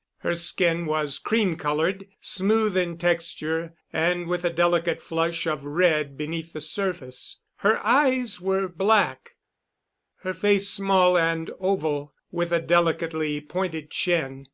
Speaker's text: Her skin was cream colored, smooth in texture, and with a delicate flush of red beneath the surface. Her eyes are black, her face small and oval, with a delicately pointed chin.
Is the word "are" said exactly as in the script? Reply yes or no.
no